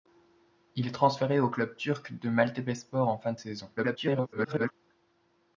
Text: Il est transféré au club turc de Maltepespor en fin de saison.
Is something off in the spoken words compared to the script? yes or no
yes